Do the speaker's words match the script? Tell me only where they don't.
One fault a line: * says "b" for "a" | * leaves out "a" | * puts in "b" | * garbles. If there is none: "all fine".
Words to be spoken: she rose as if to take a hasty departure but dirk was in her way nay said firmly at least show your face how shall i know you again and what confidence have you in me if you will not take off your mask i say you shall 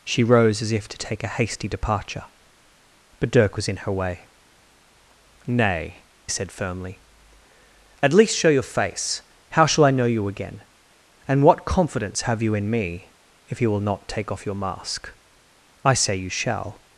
all fine